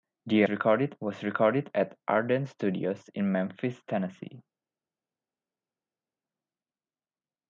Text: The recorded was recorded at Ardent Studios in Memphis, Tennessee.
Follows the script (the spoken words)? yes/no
yes